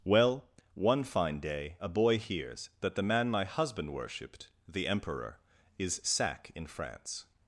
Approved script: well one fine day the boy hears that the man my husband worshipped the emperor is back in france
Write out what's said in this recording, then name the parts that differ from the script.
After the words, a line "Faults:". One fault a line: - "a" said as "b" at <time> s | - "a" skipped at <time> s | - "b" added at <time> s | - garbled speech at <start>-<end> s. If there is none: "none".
well one fine day a boy hears that the man my husband worshipped the emperor is sack in france
Faults:
- "the" said as "a" at 1.8 s
- "back" said as "sack" at 6.0 s